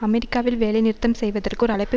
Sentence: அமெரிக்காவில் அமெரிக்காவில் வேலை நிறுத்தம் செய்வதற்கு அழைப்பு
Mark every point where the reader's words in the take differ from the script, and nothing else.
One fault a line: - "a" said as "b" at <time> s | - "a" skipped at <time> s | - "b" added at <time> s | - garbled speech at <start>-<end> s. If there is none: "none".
- "அமெரிக்காவில்" skipped at 0.6 s
- "ஒரு" added at 1.6 s